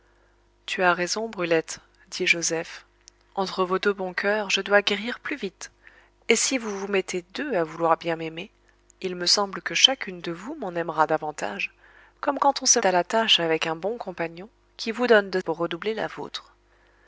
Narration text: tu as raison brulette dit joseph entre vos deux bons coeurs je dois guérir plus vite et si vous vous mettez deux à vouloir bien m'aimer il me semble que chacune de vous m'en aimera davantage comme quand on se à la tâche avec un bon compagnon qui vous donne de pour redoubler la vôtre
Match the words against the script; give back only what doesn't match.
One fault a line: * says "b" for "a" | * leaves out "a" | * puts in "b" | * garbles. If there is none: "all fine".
all fine